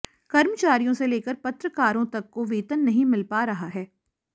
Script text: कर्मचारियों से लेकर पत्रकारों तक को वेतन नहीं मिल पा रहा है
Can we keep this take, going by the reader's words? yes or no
yes